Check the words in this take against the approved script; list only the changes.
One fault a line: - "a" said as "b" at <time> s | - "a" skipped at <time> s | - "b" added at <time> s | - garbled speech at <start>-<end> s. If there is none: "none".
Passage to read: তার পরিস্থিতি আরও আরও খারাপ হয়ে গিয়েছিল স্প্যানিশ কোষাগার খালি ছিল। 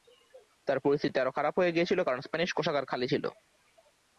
- "আরও" skipped at 1.4 s
- "কারণ" added at 2.0 s